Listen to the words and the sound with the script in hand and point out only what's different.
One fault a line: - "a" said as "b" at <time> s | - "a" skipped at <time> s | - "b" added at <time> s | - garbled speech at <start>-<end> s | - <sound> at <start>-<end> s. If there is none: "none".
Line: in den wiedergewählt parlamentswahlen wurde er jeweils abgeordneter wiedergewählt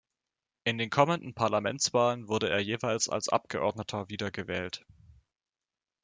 - "wiedergewählt" said as "kommenden" at 0.9 s
- "als" added at 3.1 s